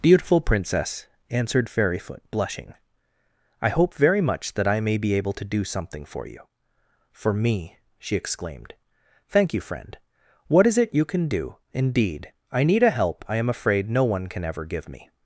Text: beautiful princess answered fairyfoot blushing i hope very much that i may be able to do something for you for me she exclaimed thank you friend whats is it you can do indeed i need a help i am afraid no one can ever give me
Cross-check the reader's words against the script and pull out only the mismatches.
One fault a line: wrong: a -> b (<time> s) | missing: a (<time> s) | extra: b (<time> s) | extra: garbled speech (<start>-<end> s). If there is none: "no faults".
wrong: whats -> what (10.5 s)